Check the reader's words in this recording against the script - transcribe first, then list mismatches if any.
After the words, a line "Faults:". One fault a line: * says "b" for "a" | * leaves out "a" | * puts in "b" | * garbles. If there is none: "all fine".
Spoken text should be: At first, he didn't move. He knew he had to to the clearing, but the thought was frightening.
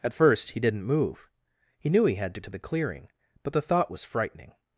At first, he didn't move. He knew he had to to the clearing, but the thought was frightening.
Faults:
all fine